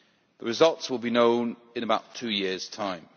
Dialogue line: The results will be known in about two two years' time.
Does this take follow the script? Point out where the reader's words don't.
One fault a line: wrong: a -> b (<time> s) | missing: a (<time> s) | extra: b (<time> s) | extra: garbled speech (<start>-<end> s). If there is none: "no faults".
missing: two (2.3 s)